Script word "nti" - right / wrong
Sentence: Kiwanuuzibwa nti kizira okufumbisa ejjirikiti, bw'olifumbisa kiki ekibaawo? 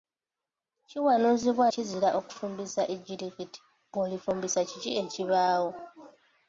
wrong